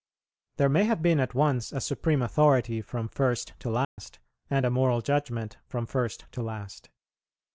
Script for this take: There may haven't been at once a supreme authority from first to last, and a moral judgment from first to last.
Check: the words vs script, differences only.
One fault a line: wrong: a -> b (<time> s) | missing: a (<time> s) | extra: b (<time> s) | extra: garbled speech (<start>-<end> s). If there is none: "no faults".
wrong: haven't -> have (0.8 s)